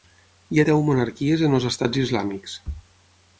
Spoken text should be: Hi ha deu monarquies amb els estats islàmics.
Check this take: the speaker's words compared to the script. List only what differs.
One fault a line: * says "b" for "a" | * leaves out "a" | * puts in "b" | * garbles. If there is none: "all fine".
* says "en" for "amb"